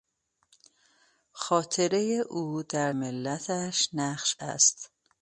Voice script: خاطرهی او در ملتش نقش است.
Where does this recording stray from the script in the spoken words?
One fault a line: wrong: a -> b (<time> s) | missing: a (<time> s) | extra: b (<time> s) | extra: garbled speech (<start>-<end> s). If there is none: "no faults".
no faults